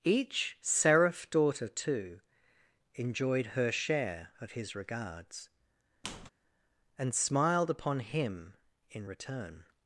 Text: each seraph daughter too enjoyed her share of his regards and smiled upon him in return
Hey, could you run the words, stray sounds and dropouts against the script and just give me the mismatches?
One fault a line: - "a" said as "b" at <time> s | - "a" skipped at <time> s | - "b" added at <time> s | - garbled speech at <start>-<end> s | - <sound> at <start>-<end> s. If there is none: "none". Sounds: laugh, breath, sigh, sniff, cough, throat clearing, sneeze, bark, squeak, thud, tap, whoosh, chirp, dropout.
- squeak at 6.0-6.3 s